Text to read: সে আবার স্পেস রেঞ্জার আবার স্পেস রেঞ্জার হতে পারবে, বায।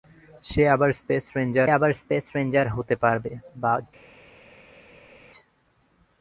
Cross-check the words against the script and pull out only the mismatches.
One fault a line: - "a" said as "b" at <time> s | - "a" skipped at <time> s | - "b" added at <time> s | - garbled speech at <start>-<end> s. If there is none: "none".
none